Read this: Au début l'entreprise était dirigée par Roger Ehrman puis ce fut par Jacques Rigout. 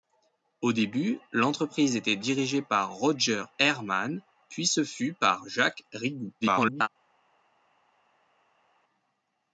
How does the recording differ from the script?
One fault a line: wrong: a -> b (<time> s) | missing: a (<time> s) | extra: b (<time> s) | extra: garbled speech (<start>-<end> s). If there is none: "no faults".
extra: garbled speech (6.4-6.9 s)